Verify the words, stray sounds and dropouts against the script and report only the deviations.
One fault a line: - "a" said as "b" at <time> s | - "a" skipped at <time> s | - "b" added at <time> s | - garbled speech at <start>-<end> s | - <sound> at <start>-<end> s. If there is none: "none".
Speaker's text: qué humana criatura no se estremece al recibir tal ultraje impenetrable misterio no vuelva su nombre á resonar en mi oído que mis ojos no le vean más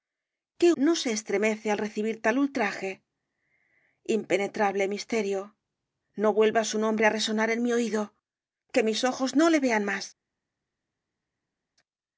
- "humana criatura" skipped at 0.7 s